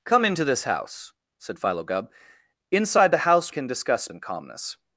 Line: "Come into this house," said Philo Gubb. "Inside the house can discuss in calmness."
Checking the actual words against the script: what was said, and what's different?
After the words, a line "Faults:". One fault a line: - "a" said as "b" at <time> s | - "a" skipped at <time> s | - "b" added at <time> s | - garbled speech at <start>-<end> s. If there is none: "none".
"Come into this house," said Philo Gubb. "Inside the house can discuss in calmness."
Faults:
none